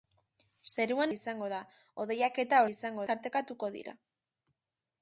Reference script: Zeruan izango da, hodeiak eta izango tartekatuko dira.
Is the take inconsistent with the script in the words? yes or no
no